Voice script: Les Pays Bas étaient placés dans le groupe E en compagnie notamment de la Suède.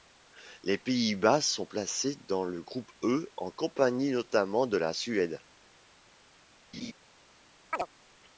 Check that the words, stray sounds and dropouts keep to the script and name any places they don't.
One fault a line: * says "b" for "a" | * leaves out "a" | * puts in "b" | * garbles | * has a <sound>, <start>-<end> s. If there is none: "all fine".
* says "sont" for "étaient"
* has a laugh, 6.7-6.9 s
* has a chirp, 7.7-7.9 s